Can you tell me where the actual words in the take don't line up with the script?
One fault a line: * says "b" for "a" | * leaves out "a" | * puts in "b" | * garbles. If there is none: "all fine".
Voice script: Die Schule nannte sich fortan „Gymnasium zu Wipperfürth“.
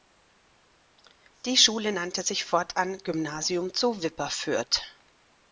all fine